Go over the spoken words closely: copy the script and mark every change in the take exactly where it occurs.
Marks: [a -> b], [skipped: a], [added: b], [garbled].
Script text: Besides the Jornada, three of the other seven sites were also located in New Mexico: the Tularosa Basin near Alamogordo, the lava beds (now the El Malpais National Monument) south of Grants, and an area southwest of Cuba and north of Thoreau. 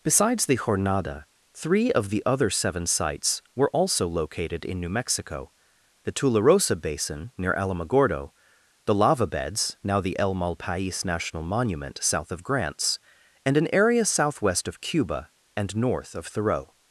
Besides the Jornada, three of the other seven sites were also located in New Mexico: the Tularosa Basin near Alamogordo, the lava beds (now the El Malpais National Monument) south of Grants, and an area southwest of Cuba and north of Thoreau.